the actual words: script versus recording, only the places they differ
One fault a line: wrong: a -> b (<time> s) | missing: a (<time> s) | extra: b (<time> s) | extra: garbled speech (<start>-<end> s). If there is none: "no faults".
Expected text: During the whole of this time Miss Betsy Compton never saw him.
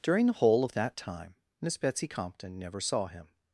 wrong: this -> that (0.7 s)